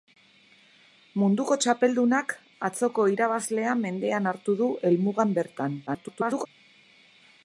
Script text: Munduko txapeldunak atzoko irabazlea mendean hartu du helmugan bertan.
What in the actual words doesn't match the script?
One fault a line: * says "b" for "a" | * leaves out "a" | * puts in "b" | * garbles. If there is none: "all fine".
* garbles